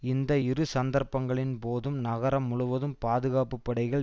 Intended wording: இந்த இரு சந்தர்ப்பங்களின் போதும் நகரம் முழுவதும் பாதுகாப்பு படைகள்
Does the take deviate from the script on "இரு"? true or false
false